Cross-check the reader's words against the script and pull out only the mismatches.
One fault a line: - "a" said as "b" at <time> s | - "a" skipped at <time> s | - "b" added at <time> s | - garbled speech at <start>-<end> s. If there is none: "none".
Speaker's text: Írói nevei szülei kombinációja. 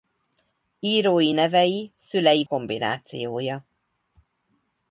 none